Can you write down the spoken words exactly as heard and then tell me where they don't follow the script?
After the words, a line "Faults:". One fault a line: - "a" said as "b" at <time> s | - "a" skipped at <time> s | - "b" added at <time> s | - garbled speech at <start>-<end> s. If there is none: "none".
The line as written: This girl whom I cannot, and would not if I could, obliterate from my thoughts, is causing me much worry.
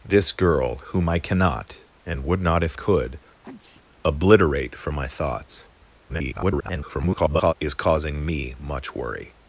This girl whom I cannot, and would not if could, obliterate from my thoughts, [garbled] is causing me much worry.
Faults:
- "I" skipped at 2.8 s
- garbled speech at 6.1-7.5 s